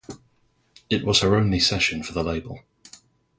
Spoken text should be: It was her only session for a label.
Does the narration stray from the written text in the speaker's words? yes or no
yes